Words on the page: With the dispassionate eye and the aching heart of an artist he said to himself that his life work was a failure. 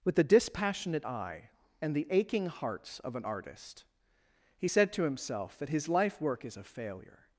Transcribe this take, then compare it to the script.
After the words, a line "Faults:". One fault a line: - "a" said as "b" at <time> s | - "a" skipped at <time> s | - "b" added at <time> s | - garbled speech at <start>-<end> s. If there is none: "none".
With the dispassionate eye and the aching hearts of an artist he said to himself that his life work is a failure.
Faults:
- "heart" said as "hearts" at 2.5 s
- "was" said as "is" at 6.4 s